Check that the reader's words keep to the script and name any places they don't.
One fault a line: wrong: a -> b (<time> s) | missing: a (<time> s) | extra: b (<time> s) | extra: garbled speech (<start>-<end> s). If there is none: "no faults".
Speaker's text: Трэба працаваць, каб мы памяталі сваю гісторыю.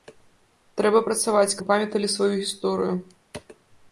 missing: каб (1.6 s)